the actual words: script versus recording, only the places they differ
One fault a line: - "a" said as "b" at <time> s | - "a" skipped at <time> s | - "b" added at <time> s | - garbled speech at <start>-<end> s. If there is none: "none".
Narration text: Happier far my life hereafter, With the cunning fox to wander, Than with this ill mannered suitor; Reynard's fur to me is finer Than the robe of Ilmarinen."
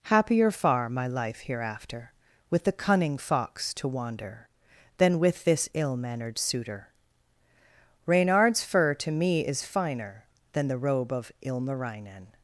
none